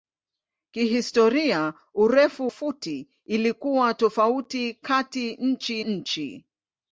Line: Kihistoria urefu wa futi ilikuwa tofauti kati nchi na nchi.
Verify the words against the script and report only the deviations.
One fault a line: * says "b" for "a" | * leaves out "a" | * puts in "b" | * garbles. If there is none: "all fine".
* leaves out "wa"
* leaves out "na"